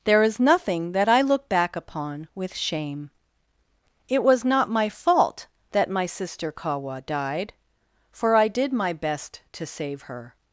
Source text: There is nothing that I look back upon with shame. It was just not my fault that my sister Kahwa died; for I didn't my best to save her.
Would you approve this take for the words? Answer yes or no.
no